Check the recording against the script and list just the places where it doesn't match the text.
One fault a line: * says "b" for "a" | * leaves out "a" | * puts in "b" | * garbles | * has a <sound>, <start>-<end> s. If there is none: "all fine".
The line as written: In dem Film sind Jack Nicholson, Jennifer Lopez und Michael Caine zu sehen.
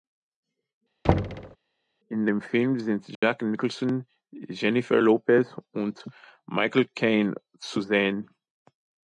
* has a thud, 1.0-1.6 s
* has a dropout, 3.2-3.2 s